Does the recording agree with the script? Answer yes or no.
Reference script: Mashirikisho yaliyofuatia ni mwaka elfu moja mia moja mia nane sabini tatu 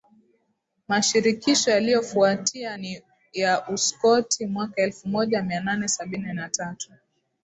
no